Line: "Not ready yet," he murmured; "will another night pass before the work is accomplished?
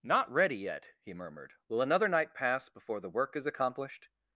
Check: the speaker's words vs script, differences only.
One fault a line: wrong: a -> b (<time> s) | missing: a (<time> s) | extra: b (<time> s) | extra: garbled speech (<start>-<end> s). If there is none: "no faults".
no faults